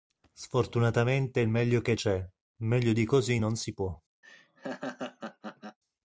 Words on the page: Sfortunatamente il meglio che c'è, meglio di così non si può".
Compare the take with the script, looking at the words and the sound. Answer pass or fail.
fail